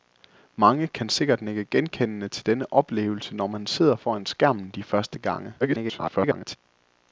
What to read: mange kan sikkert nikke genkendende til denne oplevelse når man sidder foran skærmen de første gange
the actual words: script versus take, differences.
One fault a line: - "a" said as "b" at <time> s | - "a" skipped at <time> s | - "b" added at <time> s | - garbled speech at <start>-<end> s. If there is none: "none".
- garbled speech at 5.6-6.6 s